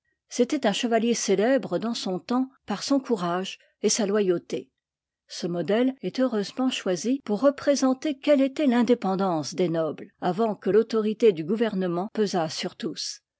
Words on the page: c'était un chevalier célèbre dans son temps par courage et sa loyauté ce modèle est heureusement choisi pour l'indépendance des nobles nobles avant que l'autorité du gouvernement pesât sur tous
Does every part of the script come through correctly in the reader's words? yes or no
no